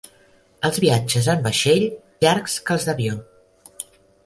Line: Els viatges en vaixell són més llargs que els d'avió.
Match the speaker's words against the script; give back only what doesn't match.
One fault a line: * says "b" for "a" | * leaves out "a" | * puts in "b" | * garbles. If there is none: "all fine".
* leaves out "són més"